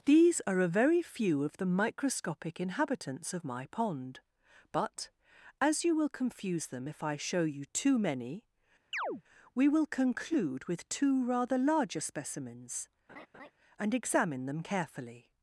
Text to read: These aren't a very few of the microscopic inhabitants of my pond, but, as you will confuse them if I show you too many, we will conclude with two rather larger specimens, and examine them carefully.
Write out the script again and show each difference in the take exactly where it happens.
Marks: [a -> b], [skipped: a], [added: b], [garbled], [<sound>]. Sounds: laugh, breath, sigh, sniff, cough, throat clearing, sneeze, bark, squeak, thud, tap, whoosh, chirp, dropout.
These [aren't -> are] a very few of the microscopic inhabitants of my pond, but, as you will confuse them if I show you too many, [chirp] we will conclude with two rather larger specimens, [laugh] and examine them carefully.